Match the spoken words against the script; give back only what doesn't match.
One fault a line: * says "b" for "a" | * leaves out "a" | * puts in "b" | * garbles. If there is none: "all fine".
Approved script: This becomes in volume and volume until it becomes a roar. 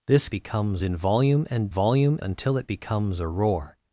all fine